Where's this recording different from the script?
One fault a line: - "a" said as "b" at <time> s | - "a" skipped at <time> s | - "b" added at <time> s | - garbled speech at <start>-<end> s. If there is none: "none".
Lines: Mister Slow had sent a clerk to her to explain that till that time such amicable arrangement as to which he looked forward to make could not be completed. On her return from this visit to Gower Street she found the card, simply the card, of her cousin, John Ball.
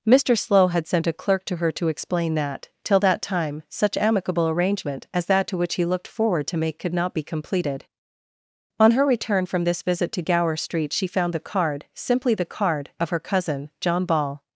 - "that" added at 5.3 s